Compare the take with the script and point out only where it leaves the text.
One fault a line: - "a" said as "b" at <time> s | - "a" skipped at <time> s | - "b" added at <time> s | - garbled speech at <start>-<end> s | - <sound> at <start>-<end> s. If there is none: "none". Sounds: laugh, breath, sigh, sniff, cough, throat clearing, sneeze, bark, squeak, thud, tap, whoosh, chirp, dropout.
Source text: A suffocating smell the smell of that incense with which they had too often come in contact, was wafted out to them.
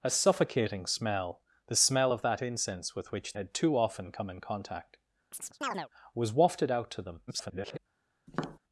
- "they" skipped at 3.4 s
- chirp at 5.3-5.9 s
- garbled speech at 7.3-7.8 s
- tap at 8.3-8.6 s